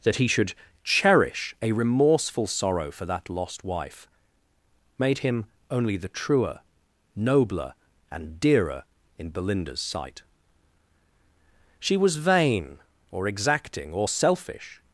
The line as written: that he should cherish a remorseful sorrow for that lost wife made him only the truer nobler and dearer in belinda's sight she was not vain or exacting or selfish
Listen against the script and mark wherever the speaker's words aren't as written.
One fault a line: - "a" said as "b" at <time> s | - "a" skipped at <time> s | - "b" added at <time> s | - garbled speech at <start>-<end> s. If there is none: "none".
- "not" skipped at 12.2 s